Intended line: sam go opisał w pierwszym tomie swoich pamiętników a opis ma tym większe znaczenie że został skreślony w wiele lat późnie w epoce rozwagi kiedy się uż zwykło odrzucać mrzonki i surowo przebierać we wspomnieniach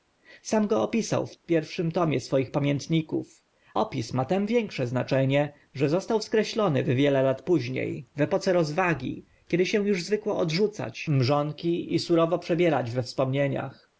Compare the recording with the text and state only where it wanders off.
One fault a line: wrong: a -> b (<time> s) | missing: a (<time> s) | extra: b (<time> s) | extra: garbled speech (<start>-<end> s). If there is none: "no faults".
missing: a (3.4 s)